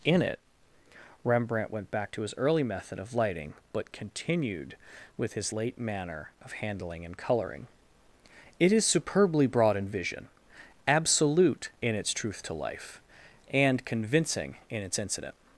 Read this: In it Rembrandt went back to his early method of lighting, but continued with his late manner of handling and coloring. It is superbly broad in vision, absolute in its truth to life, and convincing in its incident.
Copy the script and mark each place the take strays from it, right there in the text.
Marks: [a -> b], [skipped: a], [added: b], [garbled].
In it Rembrandt went back to his early method of lighting, but continued with his late manner of handling and coloring. It is superbly broad in vision, absolute in its truth to life, and convincing in its incident.